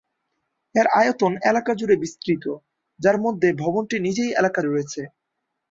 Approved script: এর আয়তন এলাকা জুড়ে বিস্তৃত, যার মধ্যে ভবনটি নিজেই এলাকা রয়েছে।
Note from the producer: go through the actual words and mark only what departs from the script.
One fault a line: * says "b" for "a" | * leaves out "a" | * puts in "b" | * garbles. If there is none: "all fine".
all fine